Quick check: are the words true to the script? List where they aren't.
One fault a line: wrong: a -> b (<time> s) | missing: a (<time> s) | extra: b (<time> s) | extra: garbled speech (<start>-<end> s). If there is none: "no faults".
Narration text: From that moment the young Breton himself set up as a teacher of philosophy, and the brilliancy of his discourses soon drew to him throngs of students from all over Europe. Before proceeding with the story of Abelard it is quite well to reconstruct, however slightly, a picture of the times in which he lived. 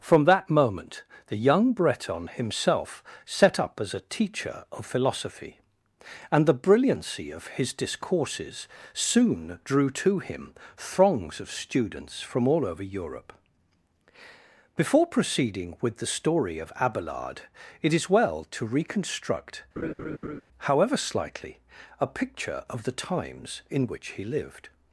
missing: quite (18.1 s)